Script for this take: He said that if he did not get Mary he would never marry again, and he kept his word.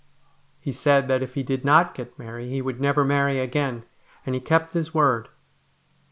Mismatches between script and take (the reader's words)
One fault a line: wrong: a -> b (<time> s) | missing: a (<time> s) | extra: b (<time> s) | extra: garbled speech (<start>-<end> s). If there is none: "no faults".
no faults